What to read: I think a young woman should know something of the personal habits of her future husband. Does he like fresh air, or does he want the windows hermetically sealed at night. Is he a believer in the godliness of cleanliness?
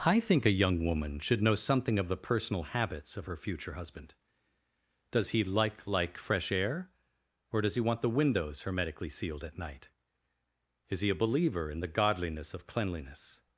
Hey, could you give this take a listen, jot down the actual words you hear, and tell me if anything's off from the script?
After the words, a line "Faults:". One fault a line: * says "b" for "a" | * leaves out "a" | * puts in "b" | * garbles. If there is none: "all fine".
I think a young woman should know something of the personal habits of her future husband. Does he like like fresh air, or does he want the windows hermetically sealed at night. Is he a believer in the godliness of cleanliness?
Faults:
* puts in "like"